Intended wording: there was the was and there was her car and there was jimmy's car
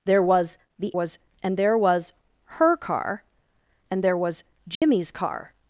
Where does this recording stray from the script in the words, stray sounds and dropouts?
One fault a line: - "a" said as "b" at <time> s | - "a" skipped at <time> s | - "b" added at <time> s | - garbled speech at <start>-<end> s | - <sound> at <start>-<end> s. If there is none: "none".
- dropout at 4.7-4.8 s